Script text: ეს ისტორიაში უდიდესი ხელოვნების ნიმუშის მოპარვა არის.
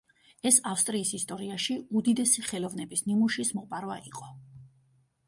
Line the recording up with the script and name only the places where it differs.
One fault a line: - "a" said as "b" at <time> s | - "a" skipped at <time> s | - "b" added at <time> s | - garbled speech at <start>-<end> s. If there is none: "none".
- "ავსტრიის" added at 0.7 s
- "არის" said as "იყო" at 4.1 s